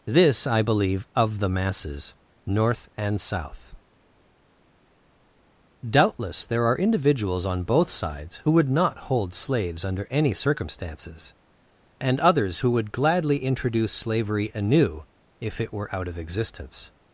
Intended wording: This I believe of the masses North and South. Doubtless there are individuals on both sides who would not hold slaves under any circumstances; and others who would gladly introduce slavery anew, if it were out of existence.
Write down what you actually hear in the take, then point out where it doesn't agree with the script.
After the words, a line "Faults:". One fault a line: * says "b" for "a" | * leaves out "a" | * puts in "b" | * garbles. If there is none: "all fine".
This I believe of the masses North and South. Doubtless there are individuals on both sides who would not hold slaves under any circumstances; and others who would gladly introduce slavery anew, if it were out of existence.
Faults:
all fine